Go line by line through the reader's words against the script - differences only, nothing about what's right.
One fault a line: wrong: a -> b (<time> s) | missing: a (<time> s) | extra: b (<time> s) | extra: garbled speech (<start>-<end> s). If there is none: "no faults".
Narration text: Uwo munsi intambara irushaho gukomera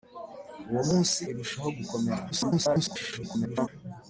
missing: intambara (1.2 s)
extra: garbled speech (2.3-3.7 s)